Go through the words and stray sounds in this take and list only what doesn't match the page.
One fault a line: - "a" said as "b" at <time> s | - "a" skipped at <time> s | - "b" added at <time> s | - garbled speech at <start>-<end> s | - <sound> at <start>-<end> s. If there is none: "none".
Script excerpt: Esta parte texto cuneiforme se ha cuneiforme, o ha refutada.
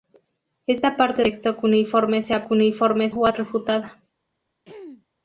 - throat clearing at 4.6-5.1 s